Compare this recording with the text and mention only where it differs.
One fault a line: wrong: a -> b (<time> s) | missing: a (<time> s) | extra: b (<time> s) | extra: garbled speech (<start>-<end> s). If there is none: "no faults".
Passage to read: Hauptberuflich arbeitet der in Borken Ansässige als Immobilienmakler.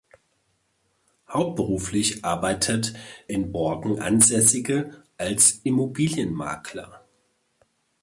missing: der (3.0 s)